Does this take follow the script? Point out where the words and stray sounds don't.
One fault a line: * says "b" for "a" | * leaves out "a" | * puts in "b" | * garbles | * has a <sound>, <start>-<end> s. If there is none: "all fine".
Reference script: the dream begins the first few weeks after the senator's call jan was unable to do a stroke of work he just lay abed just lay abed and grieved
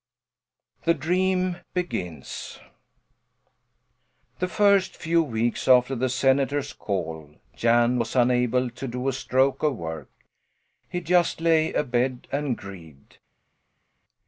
* leaves out "just lay abed"